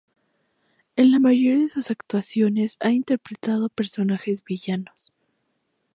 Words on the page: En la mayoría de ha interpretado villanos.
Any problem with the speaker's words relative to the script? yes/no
yes